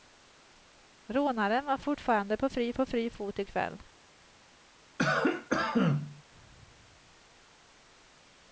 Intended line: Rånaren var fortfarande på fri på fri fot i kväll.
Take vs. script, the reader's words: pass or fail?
pass